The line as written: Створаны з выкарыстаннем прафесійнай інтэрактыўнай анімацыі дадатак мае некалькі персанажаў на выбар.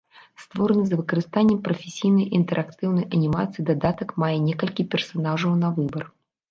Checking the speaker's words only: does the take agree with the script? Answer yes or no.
yes